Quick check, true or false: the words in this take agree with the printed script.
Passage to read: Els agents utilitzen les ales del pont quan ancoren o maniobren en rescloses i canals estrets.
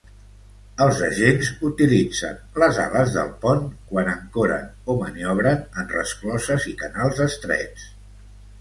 true